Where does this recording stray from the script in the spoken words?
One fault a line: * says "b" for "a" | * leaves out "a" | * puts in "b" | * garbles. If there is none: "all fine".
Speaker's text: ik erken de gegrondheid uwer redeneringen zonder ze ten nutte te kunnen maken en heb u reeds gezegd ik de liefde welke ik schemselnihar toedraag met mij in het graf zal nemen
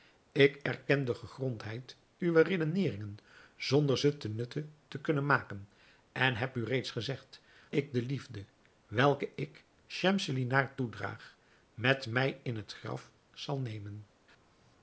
all fine